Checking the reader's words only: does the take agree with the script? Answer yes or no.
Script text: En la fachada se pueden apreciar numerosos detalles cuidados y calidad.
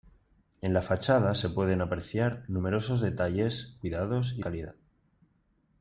yes